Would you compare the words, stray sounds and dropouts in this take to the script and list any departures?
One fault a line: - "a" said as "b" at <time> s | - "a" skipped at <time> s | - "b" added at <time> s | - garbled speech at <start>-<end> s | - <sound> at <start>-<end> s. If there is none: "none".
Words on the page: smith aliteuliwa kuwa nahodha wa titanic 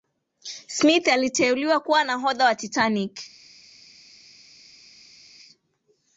none